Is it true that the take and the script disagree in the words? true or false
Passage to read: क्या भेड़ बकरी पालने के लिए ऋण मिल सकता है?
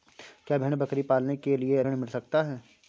false